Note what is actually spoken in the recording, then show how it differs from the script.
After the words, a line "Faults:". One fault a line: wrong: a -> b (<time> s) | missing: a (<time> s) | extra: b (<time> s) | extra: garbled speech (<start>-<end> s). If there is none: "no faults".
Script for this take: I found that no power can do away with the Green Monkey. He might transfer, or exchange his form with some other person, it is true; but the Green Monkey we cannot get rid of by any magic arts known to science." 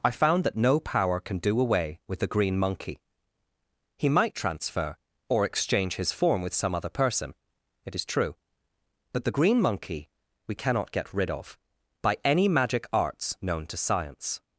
I found that no power can do away with the Green Monkey. He might transfer, or exchange his form with some other person, it is true; but the Green Monkey we cannot get rid of by any magic arts known to science."
Faults:
no faults